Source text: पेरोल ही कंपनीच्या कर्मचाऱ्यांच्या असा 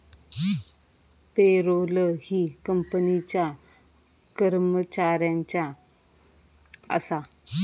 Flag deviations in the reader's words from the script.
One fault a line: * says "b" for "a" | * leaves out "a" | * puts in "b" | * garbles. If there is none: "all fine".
all fine